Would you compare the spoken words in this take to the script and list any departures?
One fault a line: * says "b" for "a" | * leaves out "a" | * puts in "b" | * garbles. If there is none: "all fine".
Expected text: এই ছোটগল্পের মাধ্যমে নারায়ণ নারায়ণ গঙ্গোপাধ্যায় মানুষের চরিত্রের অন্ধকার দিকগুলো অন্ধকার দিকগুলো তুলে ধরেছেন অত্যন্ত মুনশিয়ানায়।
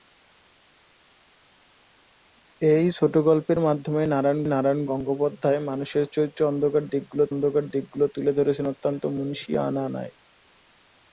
all fine